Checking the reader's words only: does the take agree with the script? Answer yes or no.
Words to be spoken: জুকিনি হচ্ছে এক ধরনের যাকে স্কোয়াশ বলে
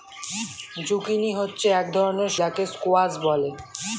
yes